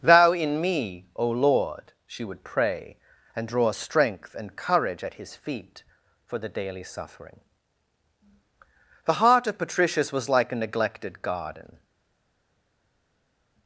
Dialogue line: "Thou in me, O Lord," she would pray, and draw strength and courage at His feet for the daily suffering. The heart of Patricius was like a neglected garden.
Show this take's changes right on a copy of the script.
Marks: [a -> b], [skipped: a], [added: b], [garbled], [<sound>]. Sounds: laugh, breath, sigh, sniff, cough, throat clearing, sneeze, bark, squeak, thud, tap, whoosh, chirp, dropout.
"Thou in me, O Lord," she would pray, and draw strength and courage at His feet for the daily suffering. The heart of Patricius was like a neglected garden.